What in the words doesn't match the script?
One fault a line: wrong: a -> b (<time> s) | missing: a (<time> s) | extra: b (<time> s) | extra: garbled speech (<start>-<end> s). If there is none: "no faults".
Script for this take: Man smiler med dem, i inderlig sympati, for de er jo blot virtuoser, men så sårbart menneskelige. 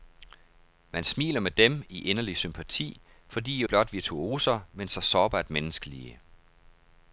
no faults